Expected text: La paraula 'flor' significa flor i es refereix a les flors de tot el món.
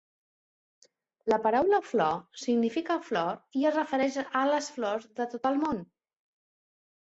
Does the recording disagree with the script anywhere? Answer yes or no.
no